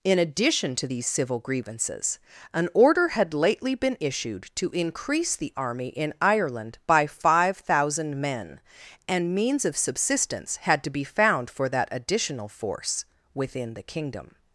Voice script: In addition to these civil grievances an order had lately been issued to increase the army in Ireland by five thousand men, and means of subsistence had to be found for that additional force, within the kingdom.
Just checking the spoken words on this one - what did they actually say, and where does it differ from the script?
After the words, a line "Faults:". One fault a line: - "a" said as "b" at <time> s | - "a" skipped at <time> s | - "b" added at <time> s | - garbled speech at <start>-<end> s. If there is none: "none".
In addition to these civil grievances an order had lately been issued to increase the army in Ireland by five thousand men, and means of subsistence had to be found for that additional force, within the kingdom.
Faults:
none